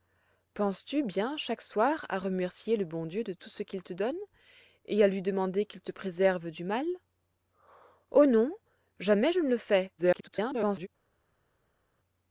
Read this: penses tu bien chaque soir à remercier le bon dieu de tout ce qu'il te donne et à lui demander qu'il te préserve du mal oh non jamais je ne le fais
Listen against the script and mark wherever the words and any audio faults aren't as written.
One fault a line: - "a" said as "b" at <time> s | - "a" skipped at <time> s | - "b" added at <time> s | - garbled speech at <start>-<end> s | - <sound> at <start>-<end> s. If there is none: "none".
- garbled speech at 10.0-10.9 s